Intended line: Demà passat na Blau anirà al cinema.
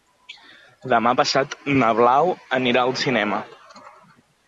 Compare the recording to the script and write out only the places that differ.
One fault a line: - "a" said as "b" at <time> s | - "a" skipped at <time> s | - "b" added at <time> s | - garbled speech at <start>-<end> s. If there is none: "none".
none